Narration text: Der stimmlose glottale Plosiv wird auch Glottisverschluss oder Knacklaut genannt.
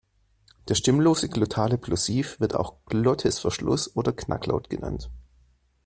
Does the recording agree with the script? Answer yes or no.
yes